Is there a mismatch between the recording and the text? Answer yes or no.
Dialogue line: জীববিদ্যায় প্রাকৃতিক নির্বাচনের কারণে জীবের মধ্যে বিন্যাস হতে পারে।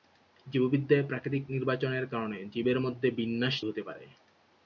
no